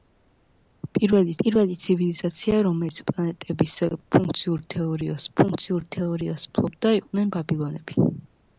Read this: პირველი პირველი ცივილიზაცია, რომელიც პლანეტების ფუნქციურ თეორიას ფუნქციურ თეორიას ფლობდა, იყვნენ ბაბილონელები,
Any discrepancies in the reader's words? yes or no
no